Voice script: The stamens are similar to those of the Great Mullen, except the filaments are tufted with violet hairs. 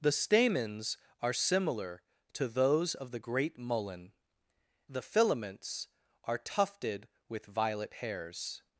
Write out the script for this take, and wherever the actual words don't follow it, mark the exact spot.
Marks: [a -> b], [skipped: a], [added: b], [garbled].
The stamens are similar to those of the Great Mullen, [skipped: except] the filaments are tufted with violet hairs.